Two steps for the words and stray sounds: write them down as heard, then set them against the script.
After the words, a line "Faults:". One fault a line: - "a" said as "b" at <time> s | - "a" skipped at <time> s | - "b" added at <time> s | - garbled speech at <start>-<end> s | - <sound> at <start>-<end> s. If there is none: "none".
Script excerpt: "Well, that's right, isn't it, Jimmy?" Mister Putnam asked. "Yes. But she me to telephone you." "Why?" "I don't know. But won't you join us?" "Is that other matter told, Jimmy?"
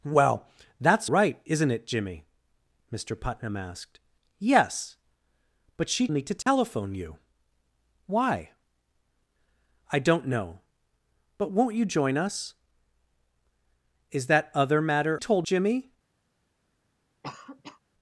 "Well, that's right, isn't it, Jimmy?" Mister Putnam asked. "Yes. But she me to telephone you." "Why?" "I don't know. But won't you join us?" "Is that other matter told, Jimmy?"
Faults:
- dropout at 6.4-6.5 s
- cough at 17.2-17.8 s